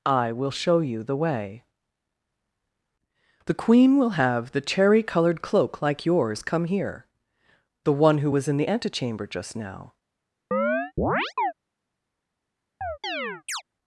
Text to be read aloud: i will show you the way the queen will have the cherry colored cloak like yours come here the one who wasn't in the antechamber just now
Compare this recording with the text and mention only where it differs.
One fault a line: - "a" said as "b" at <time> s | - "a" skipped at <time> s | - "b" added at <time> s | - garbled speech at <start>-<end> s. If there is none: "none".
- "wasn't" said as "was" at 8.3 s